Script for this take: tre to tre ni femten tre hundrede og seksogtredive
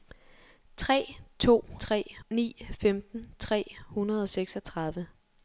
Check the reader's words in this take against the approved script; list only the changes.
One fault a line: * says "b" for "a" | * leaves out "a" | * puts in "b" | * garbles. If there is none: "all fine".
all fine